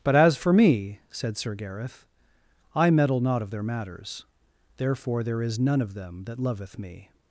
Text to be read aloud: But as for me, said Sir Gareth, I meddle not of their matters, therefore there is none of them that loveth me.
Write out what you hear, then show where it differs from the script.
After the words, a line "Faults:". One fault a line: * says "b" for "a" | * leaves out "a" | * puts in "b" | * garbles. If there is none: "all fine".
But as for me, said Sir Gareth, I meddle not of their matters, therefore there is none of them that loveth me.
Faults:
all fine